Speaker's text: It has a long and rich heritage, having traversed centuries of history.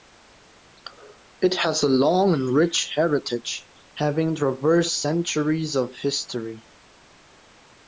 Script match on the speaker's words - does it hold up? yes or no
yes